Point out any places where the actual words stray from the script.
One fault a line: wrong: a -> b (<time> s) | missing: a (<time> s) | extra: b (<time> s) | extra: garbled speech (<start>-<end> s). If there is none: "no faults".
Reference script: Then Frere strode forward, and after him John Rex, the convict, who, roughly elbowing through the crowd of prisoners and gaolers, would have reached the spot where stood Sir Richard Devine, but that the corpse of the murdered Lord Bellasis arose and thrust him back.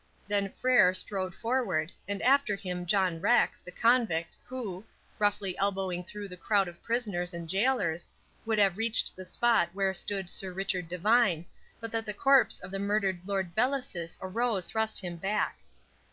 missing: and (14.7 s)